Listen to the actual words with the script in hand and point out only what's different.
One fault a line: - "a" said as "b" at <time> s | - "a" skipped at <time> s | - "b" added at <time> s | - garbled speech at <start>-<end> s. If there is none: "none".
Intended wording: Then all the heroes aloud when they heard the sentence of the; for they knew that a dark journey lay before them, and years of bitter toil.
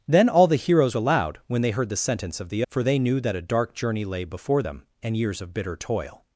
none